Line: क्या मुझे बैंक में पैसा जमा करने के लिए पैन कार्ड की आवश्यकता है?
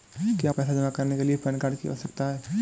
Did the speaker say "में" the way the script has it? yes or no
no